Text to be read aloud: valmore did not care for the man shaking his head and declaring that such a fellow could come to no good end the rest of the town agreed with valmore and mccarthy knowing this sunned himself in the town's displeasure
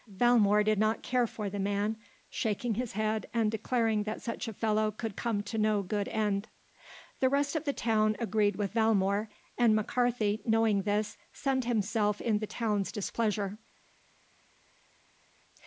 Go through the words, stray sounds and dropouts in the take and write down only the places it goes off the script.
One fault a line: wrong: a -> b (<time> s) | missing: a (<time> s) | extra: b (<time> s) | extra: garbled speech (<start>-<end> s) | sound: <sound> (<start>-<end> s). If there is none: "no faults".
no faults